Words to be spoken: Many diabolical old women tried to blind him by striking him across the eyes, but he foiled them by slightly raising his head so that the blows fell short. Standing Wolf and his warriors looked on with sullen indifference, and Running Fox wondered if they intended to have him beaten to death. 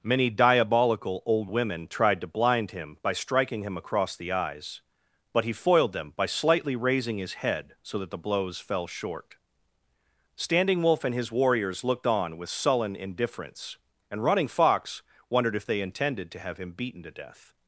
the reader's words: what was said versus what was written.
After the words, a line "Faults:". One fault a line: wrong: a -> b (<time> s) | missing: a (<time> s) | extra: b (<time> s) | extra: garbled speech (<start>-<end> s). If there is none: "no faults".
Many diabolical old women tried to blind him by striking him across the eyes, but he foiled them by slightly raising his head so that the blows fell short. Standing Wolf and his warriors looked on with sullen indifference, and Running Fox wondered if they intended to have him beaten to death.
Faults:
no faults